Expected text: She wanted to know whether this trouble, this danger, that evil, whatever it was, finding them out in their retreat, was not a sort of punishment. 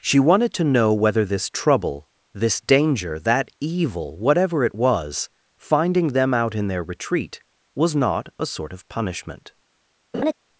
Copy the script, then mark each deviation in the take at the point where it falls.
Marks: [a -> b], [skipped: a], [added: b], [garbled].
She wanted to know whether this trouble, this danger, that evil, whatever it was, finding them out in their retreat, was not a sort of punishment.